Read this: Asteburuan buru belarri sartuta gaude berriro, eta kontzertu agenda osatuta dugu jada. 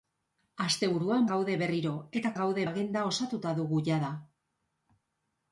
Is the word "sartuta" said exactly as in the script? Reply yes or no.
no